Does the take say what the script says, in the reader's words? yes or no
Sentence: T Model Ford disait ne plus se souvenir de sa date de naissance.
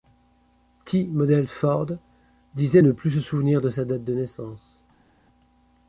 yes